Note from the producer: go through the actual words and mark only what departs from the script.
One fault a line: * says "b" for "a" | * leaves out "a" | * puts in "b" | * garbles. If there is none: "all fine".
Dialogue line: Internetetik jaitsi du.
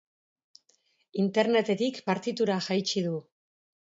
* puts in "partitura"